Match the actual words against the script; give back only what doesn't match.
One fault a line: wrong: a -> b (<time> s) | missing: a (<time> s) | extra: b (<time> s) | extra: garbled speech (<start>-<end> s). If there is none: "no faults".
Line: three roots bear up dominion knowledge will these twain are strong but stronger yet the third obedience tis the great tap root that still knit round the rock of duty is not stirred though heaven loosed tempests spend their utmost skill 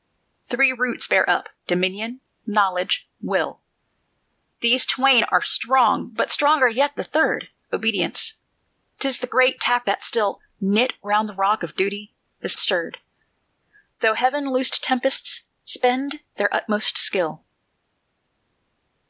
missing: root (9.9 s)
missing: not (12.6 s)